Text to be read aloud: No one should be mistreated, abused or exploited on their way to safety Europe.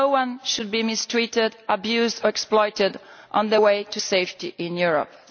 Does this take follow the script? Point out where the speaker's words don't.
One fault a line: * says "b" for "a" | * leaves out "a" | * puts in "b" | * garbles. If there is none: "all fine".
* puts in "in"